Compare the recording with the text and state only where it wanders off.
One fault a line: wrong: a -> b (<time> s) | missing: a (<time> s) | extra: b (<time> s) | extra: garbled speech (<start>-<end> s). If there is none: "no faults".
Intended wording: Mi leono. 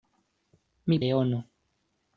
no faults